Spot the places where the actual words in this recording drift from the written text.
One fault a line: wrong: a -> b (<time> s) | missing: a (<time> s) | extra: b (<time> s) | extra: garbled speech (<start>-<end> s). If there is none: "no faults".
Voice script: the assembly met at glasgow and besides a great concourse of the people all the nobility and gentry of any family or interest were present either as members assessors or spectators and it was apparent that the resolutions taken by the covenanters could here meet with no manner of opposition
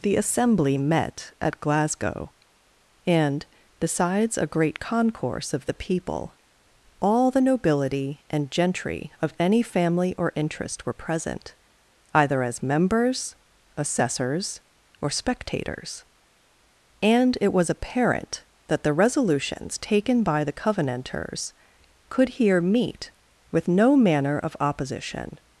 no faults